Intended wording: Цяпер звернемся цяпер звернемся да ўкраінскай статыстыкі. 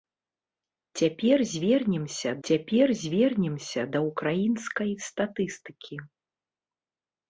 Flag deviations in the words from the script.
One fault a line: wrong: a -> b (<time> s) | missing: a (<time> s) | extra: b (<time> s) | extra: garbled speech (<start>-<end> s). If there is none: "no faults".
no faults